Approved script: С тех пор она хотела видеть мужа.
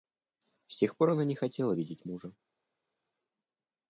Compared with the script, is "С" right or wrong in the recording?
right